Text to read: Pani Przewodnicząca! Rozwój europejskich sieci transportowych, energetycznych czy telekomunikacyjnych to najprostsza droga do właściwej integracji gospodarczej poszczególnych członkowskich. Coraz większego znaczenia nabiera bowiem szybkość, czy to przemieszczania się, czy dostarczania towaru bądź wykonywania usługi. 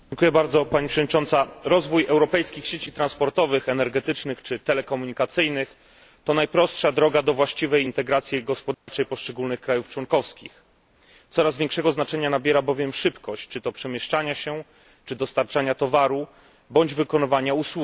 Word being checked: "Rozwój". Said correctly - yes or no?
yes